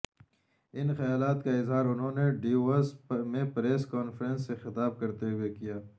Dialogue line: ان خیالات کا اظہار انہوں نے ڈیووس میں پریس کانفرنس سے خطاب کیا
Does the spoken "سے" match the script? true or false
true